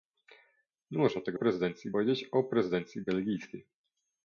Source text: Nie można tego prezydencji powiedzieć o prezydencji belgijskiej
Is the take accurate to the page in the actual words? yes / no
yes